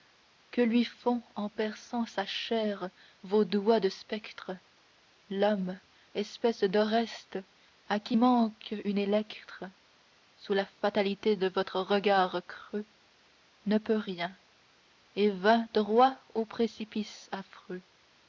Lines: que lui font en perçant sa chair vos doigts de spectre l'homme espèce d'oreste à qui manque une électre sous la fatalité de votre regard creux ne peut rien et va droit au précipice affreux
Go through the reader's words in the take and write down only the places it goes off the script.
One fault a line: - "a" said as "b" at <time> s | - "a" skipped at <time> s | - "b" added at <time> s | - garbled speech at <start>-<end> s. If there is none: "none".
none